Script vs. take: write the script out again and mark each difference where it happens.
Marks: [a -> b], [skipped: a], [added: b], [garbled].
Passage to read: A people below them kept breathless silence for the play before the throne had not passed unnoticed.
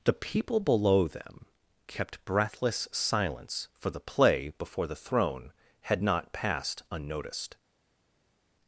[A -> The] people below them kept breathless silence for the play before the throne had not passed unnoticed.